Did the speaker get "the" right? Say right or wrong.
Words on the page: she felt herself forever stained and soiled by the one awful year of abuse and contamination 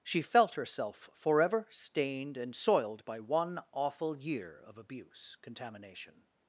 wrong